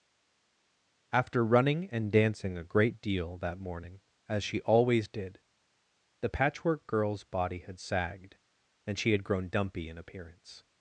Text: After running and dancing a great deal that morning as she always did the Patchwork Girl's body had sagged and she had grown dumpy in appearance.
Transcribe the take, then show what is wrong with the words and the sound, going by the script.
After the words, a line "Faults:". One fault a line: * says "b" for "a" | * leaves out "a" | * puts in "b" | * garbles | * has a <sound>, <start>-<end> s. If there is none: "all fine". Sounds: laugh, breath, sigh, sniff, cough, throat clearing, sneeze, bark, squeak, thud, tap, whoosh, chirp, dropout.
After running and dancing a great deal that morning as she always did the Patchwork Girl's body had sagged and she had grown dumpy in appearance.
Faults:
all fine